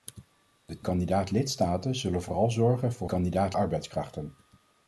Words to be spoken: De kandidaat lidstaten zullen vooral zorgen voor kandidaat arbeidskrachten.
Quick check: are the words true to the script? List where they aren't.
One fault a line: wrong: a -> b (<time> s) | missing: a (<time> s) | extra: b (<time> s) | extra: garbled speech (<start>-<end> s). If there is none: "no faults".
no faults